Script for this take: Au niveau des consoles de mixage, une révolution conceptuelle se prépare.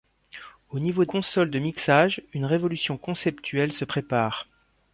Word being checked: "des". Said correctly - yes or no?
no